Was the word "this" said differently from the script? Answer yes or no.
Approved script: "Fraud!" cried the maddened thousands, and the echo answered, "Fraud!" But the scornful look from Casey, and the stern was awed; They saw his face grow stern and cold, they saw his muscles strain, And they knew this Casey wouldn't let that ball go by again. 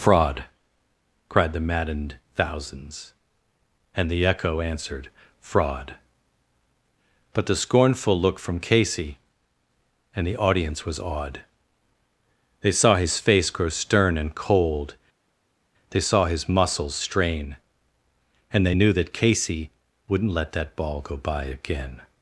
yes